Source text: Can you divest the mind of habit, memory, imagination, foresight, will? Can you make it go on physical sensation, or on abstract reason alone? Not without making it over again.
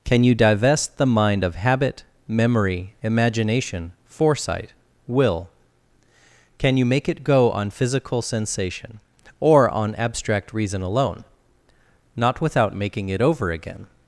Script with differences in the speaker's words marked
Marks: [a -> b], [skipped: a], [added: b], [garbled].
Can you divest the mind of habit, memory, imagination, foresight, will? Can you make it go on physical sensation, or on abstract reason alone? Not without making it over again.